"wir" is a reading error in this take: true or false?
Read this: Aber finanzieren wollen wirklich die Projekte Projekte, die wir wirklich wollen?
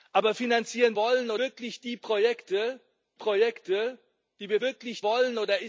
false